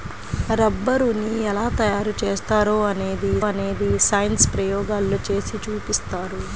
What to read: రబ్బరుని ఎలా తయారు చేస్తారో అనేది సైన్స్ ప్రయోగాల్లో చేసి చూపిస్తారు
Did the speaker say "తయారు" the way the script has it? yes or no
yes